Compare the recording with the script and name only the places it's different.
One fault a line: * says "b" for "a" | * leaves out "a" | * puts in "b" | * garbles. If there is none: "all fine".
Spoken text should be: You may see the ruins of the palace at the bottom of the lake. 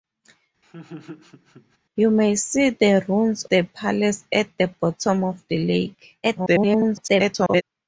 * leaves out "of"
* garbles